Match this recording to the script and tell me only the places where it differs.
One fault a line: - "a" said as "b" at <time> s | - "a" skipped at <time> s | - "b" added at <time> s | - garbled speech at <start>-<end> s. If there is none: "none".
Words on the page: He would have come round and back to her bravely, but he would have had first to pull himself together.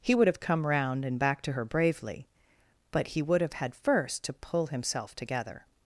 none